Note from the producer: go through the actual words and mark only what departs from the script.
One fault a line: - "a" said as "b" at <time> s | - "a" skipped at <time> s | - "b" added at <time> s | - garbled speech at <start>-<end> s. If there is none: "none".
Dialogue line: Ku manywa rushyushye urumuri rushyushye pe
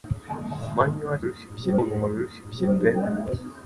none